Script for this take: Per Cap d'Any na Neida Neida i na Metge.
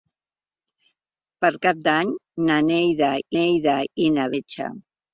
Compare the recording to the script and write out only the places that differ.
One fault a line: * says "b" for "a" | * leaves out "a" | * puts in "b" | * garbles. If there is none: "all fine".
all fine